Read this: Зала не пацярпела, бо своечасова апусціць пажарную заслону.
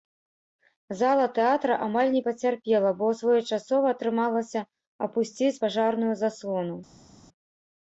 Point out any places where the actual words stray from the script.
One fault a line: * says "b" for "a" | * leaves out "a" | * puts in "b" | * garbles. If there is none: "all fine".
* puts in "тэатра амаль"
* puts in "атрымалася"